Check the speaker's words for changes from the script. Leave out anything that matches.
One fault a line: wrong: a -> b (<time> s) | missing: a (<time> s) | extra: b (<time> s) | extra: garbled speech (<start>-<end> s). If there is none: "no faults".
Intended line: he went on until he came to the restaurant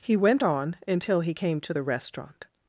no faults